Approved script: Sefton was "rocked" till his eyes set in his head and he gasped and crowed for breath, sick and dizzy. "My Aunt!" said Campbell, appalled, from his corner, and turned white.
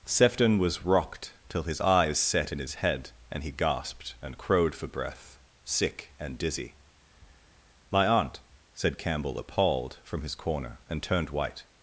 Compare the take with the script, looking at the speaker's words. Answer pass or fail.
pass